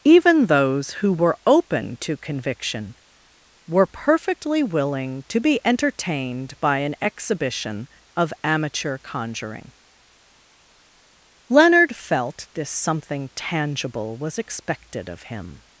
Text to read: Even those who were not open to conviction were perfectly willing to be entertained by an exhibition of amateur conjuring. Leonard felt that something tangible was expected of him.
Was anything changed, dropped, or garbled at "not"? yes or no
yes